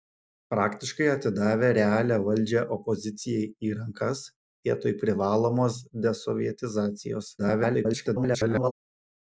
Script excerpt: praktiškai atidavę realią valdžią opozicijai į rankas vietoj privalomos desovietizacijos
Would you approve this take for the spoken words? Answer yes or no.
no